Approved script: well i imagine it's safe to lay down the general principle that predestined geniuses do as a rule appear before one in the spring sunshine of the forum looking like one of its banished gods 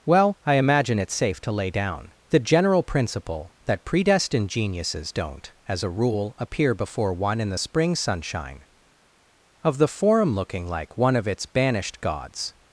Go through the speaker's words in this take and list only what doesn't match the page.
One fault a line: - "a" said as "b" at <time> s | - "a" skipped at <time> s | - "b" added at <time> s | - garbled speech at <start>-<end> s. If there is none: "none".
- "do" said as "don't" at 5.1 s